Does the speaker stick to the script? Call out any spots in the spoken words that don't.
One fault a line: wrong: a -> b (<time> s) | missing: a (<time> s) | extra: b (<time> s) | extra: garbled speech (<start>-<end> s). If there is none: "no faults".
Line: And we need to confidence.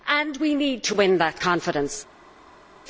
extra: win that (0.9 s)